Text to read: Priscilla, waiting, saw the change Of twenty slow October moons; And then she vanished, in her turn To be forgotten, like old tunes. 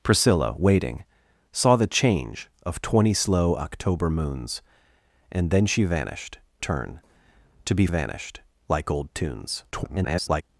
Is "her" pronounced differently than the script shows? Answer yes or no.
yes